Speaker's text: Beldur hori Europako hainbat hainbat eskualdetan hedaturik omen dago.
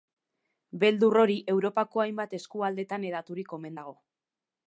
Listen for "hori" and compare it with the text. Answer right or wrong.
right